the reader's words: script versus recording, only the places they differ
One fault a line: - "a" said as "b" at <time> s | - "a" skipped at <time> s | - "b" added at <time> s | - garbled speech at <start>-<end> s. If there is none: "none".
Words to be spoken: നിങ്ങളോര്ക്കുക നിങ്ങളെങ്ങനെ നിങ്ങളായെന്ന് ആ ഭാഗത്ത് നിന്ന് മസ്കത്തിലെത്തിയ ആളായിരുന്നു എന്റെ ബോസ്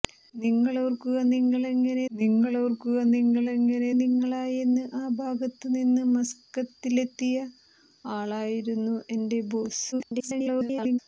- "നിങ്ങളോര്ക്കുക നിങ്ങളെങ്ങനെ" added at 2.1 s
- garbled speech at 9.9-11.0 s